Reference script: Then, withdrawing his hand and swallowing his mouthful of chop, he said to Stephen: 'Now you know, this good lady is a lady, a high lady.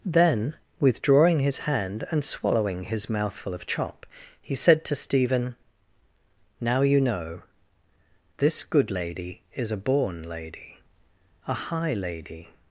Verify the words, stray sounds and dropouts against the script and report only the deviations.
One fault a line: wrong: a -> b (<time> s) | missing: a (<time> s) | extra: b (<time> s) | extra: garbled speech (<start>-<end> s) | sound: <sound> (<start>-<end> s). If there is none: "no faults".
extra: born (9.8 s)